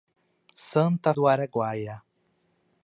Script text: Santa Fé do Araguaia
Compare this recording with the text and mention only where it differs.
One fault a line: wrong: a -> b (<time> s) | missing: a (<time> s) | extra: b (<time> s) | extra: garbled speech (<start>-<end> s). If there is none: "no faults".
missing: Fé (1.1 s)